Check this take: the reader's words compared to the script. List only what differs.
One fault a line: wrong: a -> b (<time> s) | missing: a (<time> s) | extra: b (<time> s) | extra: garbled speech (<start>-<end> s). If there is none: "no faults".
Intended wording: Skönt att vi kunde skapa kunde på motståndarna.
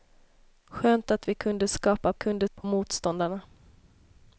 no faults